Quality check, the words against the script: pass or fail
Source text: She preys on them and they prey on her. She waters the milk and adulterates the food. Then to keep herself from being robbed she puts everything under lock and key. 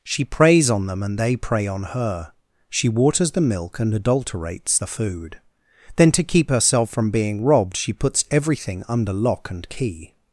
pass